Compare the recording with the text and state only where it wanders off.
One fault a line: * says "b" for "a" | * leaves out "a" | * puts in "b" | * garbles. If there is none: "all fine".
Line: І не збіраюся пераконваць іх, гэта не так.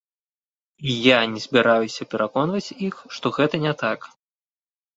* puts in "я"
* puts in "што"